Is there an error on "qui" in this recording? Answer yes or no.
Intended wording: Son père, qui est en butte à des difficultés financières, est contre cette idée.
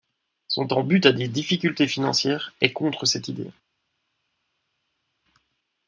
yes